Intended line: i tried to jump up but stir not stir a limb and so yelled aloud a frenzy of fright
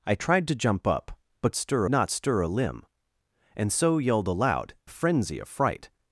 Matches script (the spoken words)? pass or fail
pass